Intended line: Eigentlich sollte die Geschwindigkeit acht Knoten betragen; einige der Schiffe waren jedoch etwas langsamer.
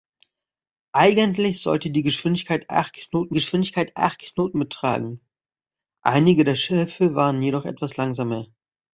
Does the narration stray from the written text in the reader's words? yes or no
yes